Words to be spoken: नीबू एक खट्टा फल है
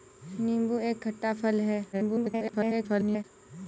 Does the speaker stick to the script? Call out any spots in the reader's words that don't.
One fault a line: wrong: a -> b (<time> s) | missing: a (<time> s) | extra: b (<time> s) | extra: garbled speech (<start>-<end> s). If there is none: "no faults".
extra: garbled speech (1.9-3.2 s)